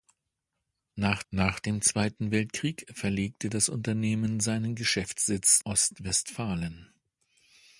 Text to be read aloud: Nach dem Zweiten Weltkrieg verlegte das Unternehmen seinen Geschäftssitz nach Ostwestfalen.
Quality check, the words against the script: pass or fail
fail